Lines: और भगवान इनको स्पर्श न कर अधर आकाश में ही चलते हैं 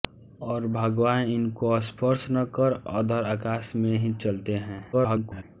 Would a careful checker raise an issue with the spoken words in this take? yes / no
yes